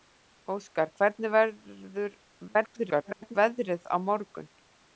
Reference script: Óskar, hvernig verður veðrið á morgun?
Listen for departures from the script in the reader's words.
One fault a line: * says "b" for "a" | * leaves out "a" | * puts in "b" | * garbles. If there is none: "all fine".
* garbles